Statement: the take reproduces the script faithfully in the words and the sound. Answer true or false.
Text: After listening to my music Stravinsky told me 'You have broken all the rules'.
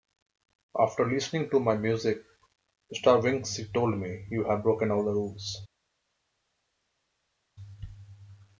true